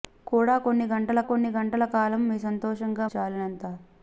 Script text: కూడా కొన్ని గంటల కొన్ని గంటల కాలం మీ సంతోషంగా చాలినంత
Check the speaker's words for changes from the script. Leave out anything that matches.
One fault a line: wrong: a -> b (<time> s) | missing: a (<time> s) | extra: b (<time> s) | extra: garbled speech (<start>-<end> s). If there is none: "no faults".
no faults